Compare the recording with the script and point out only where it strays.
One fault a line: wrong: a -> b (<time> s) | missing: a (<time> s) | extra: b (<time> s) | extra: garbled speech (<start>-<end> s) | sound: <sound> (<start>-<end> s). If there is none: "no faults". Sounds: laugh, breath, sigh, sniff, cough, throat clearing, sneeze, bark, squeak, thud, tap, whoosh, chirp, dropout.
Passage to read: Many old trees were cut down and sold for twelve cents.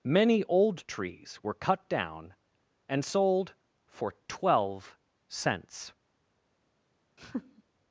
sound: laugh (7.2-7.6 s)